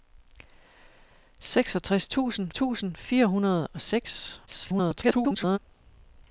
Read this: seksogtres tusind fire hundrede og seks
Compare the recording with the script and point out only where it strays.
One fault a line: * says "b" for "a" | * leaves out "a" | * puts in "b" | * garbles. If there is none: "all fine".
* puts in "tusind"
* garbles